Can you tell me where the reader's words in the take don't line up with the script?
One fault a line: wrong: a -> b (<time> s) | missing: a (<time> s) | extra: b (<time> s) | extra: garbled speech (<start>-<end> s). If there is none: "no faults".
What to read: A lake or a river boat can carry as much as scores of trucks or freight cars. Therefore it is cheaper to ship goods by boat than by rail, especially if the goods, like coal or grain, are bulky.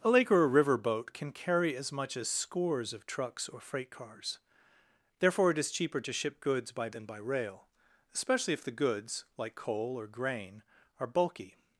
missing: boat (6.9 s)